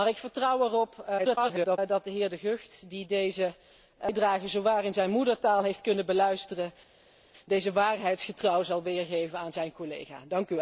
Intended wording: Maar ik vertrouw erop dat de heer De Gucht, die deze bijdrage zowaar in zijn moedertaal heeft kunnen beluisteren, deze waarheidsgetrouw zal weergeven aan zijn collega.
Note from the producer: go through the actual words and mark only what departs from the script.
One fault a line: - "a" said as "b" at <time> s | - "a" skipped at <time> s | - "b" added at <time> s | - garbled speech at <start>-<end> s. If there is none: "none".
- garbled speech at 1.2-1.8 s